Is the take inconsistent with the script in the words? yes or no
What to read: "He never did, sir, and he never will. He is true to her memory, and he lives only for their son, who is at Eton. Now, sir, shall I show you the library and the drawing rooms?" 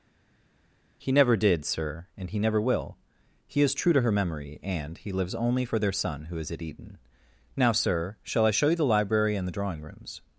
no